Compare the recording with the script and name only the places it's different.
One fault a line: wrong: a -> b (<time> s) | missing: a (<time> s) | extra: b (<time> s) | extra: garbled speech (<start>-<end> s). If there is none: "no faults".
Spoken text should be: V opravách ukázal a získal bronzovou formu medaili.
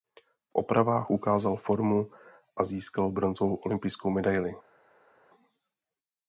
extra: formu (1.6 s)
wrong: formu -> olympijskou (3.5 s)